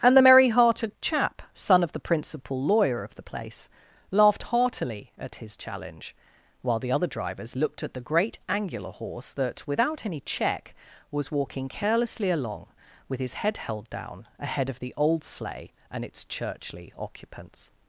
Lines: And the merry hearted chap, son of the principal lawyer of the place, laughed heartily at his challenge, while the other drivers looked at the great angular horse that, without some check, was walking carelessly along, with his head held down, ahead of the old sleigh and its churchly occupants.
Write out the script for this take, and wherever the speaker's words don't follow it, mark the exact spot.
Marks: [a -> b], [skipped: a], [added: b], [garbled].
And the merry hearted chap, son of the principal lawyer of the place, laughed heartily at his challenge, while the other drivers looked at the great angular horse that, without [some -> any] check, was walking carelessly along, with his head held down, ahead of the old sleigh and its churchly occupants.